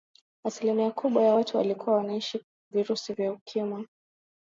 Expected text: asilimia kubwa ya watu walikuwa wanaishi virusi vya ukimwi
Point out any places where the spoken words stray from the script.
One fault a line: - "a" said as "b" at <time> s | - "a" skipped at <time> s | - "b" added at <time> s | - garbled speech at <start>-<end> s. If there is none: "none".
none